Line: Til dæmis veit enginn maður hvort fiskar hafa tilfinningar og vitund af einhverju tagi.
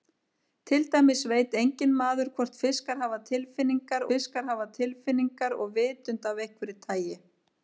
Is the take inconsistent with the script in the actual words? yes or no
yes